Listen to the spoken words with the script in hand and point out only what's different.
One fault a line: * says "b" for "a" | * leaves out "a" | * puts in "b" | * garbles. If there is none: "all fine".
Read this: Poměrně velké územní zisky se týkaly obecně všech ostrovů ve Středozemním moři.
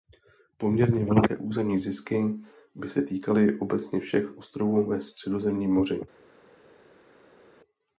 * puts in "by"